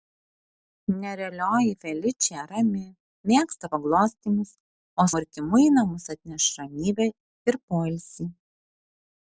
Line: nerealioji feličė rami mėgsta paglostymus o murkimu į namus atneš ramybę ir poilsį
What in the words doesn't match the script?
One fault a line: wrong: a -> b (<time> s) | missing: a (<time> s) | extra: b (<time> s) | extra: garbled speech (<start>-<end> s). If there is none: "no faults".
no faults